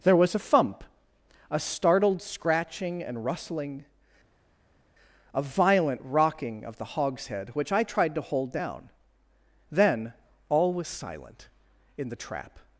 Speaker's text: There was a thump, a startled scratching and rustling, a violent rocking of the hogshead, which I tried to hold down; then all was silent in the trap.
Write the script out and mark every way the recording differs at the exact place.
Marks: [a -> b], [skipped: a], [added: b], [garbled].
There was a thump, a startled scratching and rustling, a violent rocking of the hogshead, which I tried to hold down; then all was silent in the trap.